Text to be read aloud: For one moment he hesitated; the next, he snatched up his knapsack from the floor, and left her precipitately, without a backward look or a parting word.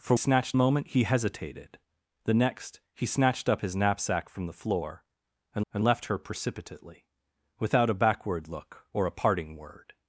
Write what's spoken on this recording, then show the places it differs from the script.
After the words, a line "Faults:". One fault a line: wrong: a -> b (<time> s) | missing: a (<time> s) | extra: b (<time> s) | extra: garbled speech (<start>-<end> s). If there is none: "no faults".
For snatched moment he hesitated; the next, he snatched up his knapsack from the floor, and and left her precipitately, without a backward look or a parting word.
Faults:
wrong: one -> snatched (0.2 s)
extra: and (5.7 s)